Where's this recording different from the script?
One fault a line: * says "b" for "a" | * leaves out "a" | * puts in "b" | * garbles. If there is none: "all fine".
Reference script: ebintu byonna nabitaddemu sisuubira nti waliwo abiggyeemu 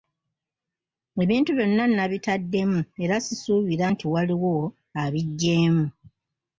* puts in "era"